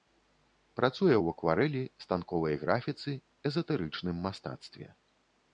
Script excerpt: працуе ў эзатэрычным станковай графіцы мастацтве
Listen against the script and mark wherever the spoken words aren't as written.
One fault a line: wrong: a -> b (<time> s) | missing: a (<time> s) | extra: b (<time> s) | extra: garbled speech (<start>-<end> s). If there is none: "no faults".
wrong: эзатэрычным -> акварэлі (1.3 s)
extra: эзатэрычным (3.5 s)